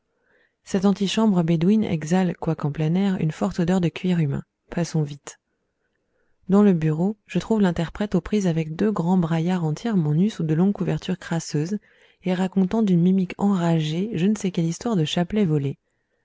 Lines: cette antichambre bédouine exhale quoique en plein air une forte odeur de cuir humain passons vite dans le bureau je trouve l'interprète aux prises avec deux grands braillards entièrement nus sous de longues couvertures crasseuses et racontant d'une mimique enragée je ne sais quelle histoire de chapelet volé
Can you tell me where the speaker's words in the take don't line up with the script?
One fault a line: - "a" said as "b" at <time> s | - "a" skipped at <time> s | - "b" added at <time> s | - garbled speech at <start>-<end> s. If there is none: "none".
none